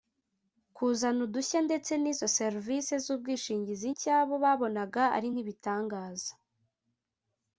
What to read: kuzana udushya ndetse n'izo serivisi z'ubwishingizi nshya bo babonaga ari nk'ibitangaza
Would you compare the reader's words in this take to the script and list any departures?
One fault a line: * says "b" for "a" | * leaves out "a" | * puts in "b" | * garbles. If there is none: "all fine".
all fine